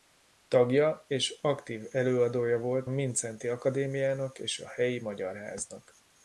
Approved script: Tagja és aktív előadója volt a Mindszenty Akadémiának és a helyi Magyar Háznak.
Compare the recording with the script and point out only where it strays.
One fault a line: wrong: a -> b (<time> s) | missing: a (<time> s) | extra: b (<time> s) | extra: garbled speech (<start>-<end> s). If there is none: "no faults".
missing: a (2.9 s)